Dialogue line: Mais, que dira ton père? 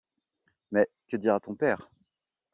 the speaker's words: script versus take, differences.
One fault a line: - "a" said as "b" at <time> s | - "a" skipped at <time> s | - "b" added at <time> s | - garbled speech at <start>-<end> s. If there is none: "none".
none